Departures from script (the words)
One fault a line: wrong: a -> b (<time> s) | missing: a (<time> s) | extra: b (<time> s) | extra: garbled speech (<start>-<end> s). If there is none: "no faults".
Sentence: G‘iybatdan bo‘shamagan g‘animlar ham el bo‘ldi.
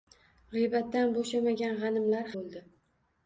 missing: ham el (2.4 s)